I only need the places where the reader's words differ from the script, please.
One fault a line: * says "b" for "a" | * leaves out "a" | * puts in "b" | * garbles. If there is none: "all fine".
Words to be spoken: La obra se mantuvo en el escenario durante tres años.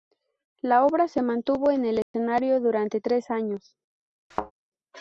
all fine